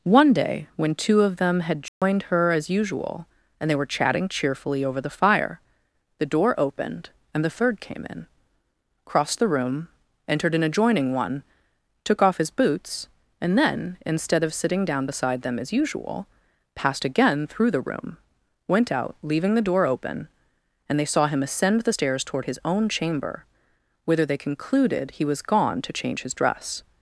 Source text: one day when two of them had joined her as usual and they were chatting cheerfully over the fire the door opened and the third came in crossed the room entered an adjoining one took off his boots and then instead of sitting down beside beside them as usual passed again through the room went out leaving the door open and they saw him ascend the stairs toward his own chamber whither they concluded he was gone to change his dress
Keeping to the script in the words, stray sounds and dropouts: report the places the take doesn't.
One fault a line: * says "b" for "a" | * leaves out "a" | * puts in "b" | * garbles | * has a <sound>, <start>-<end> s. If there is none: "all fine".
* has a dropout, 1.9-2.0 s
* leaves out "beside"